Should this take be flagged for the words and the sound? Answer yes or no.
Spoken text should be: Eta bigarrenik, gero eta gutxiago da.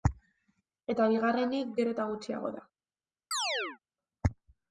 yes